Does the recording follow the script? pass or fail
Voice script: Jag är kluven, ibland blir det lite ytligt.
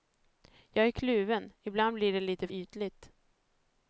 pass